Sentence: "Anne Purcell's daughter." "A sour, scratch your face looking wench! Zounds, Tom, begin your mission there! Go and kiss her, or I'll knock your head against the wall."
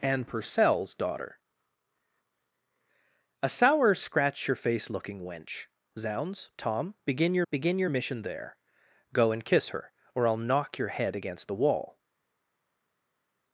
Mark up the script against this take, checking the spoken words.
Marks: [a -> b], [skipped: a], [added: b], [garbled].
"Anne Purcell's daughter." "A sour, scratch your face looking wench! Zounds, Tom, begin your [added: begin your] mission there! Go and kiss her, or I'll knock your head against the wall."